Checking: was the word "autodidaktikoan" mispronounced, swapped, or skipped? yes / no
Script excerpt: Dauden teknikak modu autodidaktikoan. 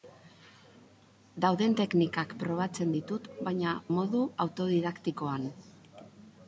no